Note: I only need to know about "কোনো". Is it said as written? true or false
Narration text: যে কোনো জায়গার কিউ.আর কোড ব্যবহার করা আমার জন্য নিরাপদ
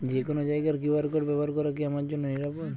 true